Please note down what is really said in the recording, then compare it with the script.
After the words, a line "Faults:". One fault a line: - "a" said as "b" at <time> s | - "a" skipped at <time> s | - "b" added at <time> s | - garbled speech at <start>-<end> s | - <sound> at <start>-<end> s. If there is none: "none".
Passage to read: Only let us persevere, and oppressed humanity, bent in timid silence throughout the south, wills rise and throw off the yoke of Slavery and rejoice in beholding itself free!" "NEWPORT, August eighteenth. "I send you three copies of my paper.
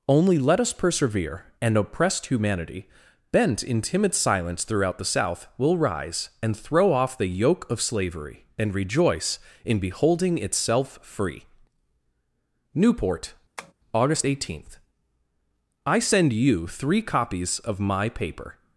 Only let us persevere, and oppressed humanity, bent in timid silence throughout the south, will rise and throw off the yoke of Slavery and rejoice in beholding itself free!" "NEWPORT, August eighteenth. "I send you three copies of my paper.
Faults:
- "wills" said as "will" at 5.6 s
- tap at 13.6-13.7 s